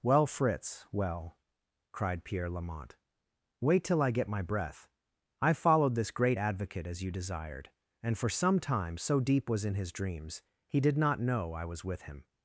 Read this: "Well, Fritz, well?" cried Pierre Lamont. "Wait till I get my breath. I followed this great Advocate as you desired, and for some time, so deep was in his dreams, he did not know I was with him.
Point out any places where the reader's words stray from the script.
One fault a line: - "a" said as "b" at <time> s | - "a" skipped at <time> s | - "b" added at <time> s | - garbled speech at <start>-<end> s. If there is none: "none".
none